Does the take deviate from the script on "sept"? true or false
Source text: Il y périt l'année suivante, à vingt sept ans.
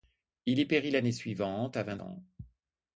true